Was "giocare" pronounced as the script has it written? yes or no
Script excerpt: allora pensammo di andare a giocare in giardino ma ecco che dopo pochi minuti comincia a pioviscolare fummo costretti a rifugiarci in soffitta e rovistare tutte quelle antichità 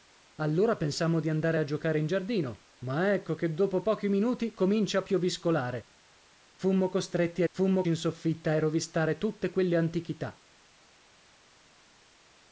yes